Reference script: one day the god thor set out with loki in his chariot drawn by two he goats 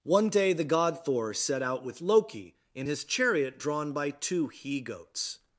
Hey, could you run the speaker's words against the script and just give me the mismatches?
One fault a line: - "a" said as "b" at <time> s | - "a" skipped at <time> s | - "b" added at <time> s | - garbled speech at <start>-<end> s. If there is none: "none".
none